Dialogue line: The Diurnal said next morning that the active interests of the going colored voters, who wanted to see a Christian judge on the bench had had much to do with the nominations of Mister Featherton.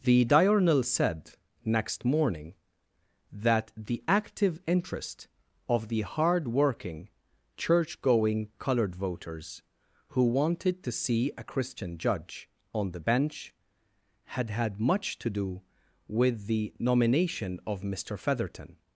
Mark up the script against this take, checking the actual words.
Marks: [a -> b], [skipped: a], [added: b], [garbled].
The Diurnal said next morning that the active [interests -> interest] of the [added: hard working church] going colored voters, who wanted to see a Christian judge on the bench had had much to do with the [nominations -> nomination] of Mister Featherton.